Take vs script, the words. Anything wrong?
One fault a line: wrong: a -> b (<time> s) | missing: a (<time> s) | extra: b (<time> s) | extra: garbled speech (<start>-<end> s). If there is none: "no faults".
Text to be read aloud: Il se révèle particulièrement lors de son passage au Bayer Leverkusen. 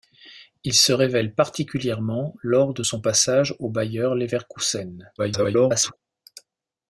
extra: garbled speech (5.2-6.0 s)